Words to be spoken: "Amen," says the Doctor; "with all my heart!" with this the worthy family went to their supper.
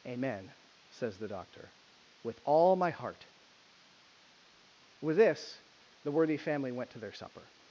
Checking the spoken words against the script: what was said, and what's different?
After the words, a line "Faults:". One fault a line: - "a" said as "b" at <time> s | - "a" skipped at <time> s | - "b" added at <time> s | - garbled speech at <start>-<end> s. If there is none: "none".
"Amen," says the Doctor; "with all my heart!" with this the worthy family went to their supper.
Faults:
none